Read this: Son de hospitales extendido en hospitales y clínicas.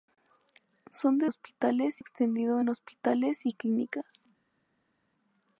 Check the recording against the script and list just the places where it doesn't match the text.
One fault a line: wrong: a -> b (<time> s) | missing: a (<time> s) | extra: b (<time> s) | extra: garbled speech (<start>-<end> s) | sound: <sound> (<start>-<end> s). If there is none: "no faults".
no faults